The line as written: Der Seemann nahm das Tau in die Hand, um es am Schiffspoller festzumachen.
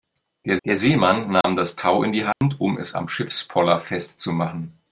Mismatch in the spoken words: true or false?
true